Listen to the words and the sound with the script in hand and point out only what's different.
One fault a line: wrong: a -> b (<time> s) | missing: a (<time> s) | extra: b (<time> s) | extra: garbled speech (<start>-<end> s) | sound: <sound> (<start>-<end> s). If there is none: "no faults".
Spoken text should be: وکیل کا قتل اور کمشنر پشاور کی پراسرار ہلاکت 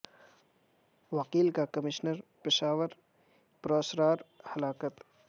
missing: قتل اور (1.6 s)
missing: کی (2.9 s)